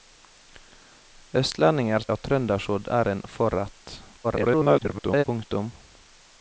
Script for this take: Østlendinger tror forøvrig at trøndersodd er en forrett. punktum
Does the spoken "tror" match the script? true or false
false